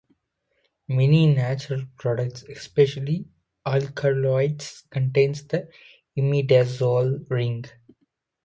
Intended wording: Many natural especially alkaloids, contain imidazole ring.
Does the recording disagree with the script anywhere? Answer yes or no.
yes